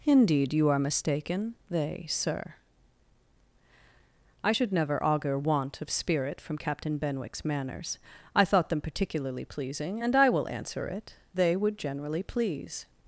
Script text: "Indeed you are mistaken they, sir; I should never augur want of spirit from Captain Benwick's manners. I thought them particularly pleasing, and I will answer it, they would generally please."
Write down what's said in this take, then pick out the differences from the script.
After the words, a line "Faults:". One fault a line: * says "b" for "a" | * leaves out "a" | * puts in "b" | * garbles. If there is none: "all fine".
"Indeed you are mistaken they, sir; I should never augur want of spirit from Captain Benwick's manners. I thought them particularly pleasing, and I will answer it, they would generally please."
Faults:
all fine